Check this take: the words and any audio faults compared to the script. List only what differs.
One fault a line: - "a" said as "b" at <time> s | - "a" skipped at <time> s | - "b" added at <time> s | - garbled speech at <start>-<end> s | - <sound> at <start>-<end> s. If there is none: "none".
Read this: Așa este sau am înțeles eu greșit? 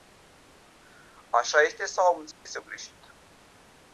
- dropout at 2.3-2.5 s